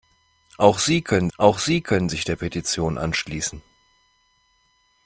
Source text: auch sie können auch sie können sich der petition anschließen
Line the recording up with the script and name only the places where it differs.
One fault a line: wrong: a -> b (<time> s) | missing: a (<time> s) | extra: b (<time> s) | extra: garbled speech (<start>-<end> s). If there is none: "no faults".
no faults